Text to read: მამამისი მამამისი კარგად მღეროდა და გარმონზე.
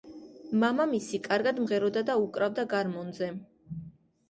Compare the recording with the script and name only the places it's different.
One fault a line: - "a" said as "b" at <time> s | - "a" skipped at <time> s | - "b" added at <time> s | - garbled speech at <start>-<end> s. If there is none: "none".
- "მამამისი" skipped at 1.2 s
- "უკრავდა" added at 2.3 s